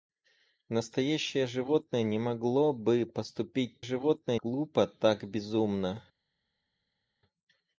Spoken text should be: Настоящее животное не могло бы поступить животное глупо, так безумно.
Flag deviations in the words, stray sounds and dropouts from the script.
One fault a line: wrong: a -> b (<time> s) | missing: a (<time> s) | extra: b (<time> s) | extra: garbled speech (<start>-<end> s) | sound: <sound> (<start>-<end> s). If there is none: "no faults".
no faults